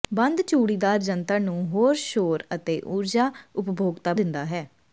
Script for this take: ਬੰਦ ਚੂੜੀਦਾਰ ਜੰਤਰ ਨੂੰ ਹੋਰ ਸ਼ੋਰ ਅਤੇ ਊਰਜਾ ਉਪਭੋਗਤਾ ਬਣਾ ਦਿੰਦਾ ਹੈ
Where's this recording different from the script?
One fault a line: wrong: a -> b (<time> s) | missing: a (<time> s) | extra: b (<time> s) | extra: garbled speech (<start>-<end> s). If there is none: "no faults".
missing: ਬਣਾ (4.1 s)